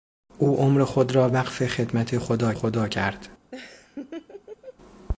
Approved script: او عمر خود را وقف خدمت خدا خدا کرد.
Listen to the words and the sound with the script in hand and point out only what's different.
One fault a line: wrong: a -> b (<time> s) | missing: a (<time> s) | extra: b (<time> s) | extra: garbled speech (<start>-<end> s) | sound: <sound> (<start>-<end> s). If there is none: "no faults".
sound: laugh (3.5-4.8 s)